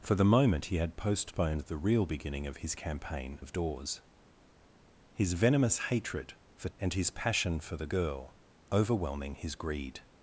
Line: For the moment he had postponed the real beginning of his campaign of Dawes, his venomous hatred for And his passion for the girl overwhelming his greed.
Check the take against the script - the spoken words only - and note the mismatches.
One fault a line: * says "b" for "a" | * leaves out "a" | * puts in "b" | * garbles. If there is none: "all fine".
all fine